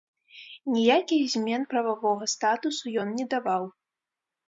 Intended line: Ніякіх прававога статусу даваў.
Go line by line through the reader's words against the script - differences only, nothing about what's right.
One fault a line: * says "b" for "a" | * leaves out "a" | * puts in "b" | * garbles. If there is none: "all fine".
* puts in "змен"
* puts in "ён не"